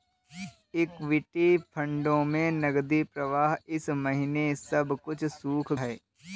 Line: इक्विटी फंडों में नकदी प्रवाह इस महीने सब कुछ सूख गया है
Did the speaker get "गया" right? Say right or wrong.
wrong